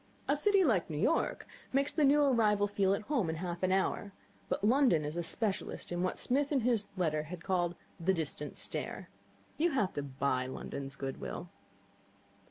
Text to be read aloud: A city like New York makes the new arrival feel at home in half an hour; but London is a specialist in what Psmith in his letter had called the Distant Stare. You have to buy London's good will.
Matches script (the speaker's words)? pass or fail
pass